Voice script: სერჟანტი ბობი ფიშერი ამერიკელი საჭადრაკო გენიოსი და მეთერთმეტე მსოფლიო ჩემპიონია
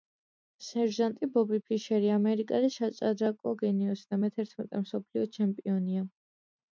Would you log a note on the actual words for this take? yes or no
no